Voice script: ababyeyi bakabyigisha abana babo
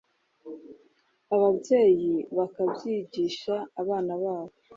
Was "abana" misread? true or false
false